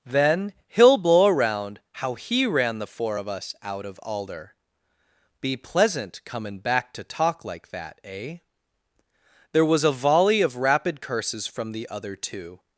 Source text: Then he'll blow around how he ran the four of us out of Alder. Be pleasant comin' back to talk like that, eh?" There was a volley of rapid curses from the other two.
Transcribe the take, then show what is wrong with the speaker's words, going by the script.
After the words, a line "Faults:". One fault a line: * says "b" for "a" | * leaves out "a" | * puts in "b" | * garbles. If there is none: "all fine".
Then he'll blow around how he ran the four of us out of Alder. Be pleasant comin' back to talk like that, eh?" There was a volley of rapid curses from the other two.
Faults:
all fine